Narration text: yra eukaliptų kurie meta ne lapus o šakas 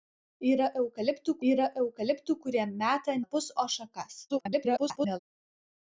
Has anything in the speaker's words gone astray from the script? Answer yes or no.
yes